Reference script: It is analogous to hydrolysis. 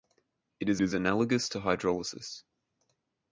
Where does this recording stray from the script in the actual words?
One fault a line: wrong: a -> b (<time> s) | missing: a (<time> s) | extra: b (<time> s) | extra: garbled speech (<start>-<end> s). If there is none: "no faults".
extra: is (0.8 s)